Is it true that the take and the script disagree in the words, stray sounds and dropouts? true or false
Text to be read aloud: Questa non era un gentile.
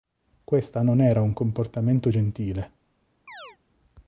true